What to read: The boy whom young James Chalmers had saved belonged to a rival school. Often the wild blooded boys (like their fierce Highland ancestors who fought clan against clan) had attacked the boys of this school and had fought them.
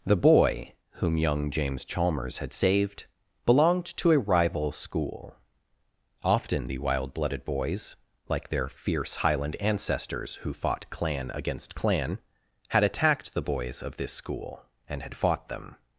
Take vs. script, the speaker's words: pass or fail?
pass